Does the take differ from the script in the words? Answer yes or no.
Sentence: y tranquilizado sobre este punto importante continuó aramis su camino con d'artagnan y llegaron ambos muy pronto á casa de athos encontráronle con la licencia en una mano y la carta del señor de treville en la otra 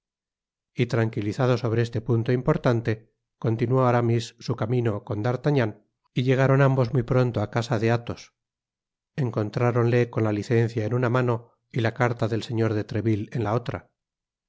no